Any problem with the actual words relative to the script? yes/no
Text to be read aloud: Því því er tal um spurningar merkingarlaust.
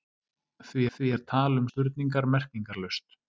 no